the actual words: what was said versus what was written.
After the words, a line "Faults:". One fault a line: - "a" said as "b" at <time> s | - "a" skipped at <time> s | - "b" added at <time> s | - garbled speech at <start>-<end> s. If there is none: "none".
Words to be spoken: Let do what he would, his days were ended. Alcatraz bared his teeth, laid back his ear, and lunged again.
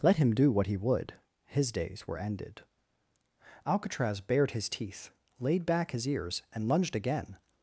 Let him do what he would, his days were ended. Alcatraz bared his teeth, laid back his ears, and lunged again.
Faults:
- "him" added at 0.2 s
- "ear" said as "ears" at 6.1 s